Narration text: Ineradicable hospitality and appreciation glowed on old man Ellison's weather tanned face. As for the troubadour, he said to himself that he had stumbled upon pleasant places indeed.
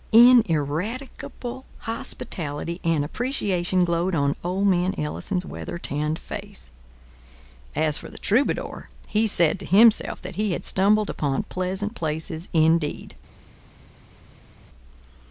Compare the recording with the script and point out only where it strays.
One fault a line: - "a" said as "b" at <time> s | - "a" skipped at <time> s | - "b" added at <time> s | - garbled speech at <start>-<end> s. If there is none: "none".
none